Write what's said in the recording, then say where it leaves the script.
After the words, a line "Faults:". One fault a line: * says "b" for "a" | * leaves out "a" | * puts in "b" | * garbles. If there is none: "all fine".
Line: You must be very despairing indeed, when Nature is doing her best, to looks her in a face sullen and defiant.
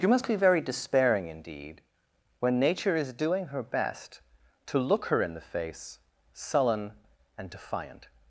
You must be very despairing indeed, when Nature is doing her best, to look her in the face sullen and defiant.
Faults:
* says "look" for "looks"
* says "the" for "a"